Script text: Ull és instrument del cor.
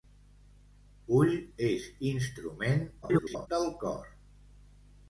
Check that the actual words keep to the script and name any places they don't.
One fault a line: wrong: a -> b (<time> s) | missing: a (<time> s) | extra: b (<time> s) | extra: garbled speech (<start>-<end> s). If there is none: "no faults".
extra: garbled speech (3.0-3.5 s)